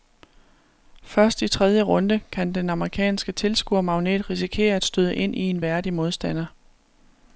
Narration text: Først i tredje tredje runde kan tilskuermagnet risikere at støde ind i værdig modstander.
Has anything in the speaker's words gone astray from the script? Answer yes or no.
yes